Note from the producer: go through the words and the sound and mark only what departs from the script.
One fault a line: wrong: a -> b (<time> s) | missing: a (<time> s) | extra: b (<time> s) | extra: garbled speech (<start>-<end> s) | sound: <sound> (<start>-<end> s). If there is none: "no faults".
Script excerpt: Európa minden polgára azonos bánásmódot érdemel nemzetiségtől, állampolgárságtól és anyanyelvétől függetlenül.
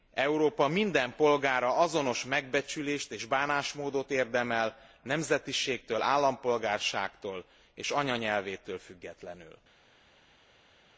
extra: megbecsülést és (2.2 s)